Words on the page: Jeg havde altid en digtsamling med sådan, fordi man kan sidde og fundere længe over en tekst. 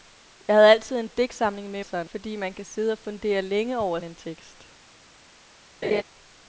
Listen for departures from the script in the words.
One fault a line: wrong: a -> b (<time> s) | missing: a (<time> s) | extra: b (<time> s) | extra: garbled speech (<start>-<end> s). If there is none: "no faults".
no faults